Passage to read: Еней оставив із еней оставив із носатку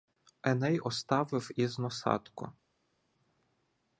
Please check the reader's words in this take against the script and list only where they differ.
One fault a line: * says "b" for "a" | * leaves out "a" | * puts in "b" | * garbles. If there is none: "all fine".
* leaves out "еней оставив із"